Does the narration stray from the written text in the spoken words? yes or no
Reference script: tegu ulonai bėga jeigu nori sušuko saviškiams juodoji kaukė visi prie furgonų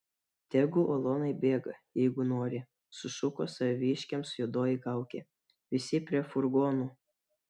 no